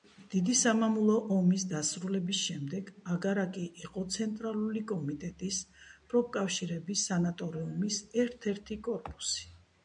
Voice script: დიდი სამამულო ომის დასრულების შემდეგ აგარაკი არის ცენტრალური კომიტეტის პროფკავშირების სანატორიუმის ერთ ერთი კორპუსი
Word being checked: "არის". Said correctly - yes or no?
no